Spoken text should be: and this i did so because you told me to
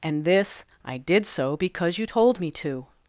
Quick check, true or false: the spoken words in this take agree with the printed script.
true